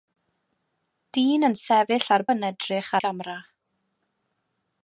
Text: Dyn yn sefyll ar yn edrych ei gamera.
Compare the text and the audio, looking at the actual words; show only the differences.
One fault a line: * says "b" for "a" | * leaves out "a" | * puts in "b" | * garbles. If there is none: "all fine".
all fine